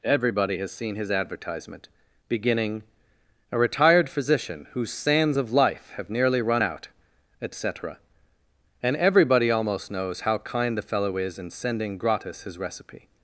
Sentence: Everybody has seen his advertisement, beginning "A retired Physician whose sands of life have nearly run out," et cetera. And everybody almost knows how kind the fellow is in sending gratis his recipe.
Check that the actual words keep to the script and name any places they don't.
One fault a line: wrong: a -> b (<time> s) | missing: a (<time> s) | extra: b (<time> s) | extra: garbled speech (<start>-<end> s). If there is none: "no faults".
no faults